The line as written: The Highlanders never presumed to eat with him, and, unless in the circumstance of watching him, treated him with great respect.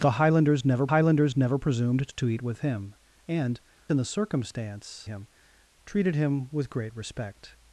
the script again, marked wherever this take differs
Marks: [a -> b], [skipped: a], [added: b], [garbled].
The Highlanders never [added: Highlanders never] presumed to eat with him, and, [skipped: unless] in the circumstance [skipped: of watching] him, treated him with great respect.